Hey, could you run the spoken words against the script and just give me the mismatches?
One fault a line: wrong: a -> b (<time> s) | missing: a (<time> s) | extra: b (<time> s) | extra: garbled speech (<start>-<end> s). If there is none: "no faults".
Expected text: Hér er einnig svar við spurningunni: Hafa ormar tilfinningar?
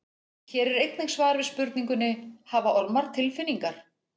no faults